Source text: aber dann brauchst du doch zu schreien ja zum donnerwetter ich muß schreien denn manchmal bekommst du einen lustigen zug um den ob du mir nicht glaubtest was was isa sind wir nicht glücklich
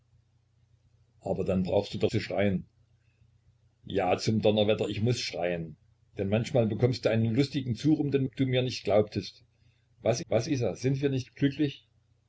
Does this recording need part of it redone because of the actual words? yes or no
no